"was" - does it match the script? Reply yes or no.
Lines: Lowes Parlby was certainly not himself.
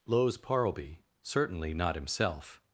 no